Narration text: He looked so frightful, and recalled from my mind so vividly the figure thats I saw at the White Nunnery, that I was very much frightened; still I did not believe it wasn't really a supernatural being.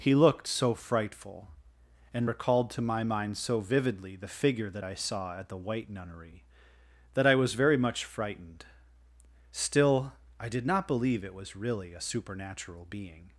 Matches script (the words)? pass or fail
fail